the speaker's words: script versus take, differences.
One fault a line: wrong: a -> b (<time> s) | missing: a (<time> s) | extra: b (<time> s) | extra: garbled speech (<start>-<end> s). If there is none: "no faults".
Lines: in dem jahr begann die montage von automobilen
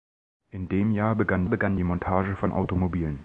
extra: begann (1.5 s)